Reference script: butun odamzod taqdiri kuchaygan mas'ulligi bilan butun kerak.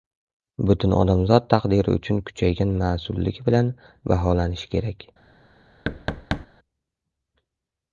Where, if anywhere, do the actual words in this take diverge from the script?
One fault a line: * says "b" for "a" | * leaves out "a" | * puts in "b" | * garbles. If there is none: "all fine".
* puts in "uchun"
* says "baholanishi" for "butun"